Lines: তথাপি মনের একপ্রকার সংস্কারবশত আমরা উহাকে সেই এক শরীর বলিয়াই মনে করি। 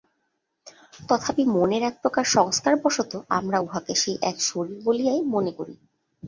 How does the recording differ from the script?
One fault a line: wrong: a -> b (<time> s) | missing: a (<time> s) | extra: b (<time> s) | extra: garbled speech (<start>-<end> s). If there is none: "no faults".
no faults